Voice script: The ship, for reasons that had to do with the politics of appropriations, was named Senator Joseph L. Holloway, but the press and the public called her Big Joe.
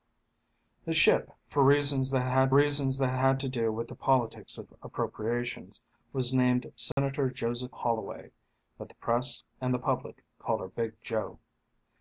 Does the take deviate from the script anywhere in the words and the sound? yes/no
yes